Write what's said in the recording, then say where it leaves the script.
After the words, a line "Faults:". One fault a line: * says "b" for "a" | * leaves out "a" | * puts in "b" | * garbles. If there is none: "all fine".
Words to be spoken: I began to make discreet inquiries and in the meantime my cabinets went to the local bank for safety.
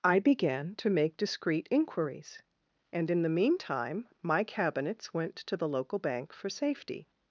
I began to make discreet inquiries and in the meantime my cabinets went to the local bank for safety.
Faults:
all fine